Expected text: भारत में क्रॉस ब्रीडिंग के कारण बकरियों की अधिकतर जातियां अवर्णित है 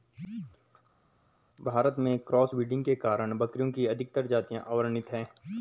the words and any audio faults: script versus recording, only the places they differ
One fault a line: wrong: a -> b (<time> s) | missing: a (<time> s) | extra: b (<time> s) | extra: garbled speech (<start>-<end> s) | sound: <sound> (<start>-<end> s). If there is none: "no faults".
no faults